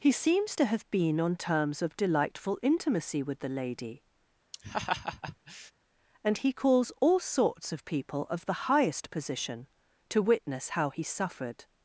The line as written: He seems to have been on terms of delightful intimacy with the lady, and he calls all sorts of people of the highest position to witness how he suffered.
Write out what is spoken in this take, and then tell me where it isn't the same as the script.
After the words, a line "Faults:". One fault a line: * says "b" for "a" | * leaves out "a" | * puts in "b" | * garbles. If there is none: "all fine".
He seems to have been on terms of delightful intimacy with the lady, and he calls all sorts of people of the highest position to witness how he suffered.
Faults:
all fine